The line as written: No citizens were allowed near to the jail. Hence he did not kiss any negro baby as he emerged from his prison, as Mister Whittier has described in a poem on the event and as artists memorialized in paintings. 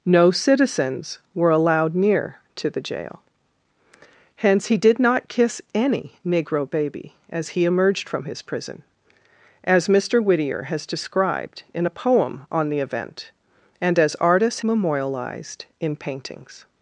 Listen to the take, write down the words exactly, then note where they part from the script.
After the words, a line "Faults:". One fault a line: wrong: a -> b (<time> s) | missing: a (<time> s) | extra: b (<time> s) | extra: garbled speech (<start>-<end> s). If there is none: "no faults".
No citizens were allowed near to the jail. Hence he did not kiss any negro baby as he emerged from his prison, as Mister Whittier has described in a poem on the event and as artists memorialized in paintings.
Faults:
no faults